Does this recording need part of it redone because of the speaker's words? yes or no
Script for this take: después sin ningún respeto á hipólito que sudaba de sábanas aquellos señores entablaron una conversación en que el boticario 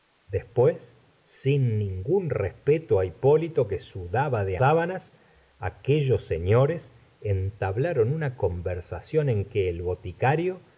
no